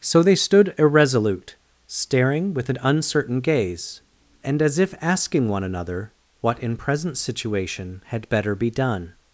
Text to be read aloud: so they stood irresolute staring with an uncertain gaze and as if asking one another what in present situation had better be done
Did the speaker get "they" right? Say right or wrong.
right